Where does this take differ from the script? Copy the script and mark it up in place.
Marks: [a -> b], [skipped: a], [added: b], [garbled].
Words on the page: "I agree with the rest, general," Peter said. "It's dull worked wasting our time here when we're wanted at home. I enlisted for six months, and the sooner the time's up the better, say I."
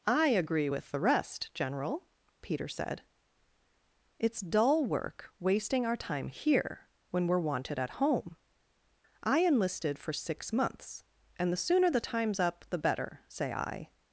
"I agree with the rest, general," Peter said. "It's dull [worked -> work] wasting our time here when we're wanted at home. I enlisted for six months, and the sooner the time's up the better, say I."